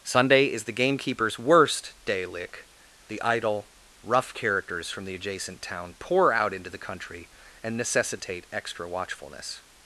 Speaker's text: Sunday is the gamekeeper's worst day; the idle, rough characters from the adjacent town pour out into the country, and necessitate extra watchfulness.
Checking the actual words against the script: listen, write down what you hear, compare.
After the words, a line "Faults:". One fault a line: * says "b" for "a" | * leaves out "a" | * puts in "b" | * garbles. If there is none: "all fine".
Sunday is the gamekeeper's worst day; lick the idle, rough characters from the adjacent town pour out into the country, and necessitate extra watchfulness.
Faults:
* puts in "lick"